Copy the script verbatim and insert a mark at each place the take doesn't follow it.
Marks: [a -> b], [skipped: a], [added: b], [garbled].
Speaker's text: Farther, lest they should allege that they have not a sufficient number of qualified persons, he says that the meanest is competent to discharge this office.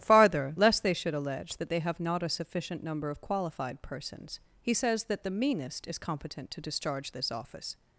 Farther, lest they should allege that they have not a sufficient number of qualified persons, he says that the meanest is competent to discharge this office.